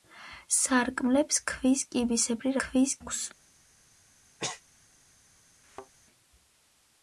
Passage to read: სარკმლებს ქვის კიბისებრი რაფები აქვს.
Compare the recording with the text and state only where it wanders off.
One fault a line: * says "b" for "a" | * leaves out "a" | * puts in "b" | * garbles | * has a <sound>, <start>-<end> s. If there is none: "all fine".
* says "ქვის" for "რაფები"
* has a sneeze, 4.4-4.6 s
* has a thud, 5.6-5.9 s